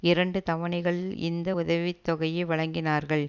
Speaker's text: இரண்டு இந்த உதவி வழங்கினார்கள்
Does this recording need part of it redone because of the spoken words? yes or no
yes